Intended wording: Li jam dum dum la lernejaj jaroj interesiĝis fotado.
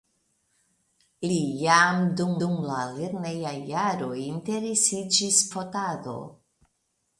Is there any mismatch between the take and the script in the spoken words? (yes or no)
no